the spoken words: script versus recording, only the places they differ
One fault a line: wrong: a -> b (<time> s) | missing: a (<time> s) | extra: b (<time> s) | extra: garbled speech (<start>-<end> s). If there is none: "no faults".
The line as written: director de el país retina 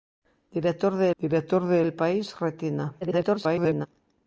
extra: director de (1.2 s)
extra: garbled speech (3.0-3.9 s)